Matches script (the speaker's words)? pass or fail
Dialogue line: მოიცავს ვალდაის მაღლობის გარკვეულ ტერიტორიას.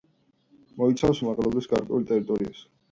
fail